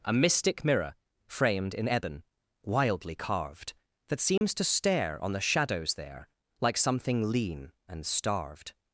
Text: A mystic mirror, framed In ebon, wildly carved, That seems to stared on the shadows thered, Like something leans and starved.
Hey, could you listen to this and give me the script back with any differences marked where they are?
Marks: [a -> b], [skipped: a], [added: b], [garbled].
A mystic mirror, framed In ebon, wildly carved, That seems to [stared -> stare] on the shadows [thered, -> there] Like something [leans -> lean] and starved.